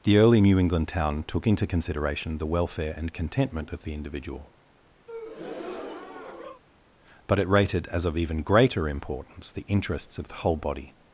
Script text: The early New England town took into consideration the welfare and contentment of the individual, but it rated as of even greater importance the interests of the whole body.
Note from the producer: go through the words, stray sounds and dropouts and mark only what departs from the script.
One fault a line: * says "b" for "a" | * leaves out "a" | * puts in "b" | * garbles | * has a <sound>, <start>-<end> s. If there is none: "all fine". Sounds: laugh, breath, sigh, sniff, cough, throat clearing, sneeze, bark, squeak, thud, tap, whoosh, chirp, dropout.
* has a breath, 5.1-6.6 s